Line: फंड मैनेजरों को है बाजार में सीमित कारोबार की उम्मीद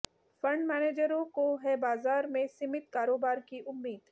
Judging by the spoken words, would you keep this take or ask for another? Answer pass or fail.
pass